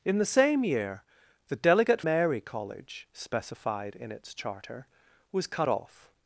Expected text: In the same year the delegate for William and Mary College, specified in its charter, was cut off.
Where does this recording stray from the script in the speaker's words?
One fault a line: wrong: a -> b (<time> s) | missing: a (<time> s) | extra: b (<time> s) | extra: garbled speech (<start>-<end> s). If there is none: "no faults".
missing: for William and (2.0 s)